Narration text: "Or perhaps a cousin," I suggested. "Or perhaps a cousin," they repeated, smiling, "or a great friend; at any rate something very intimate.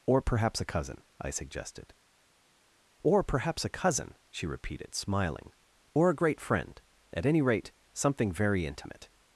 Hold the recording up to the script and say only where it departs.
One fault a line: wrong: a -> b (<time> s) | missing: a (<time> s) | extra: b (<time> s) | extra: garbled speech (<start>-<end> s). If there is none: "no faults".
wrong: they -> she (4.3 s)